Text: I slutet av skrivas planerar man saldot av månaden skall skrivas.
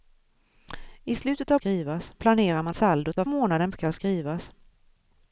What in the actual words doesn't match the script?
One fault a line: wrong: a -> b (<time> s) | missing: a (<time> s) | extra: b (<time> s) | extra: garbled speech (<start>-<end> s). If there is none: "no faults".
no faults